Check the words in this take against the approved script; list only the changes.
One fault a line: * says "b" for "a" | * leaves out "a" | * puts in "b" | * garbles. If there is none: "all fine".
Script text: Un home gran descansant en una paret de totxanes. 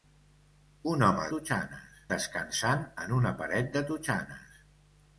* says "totxanes" for "gran"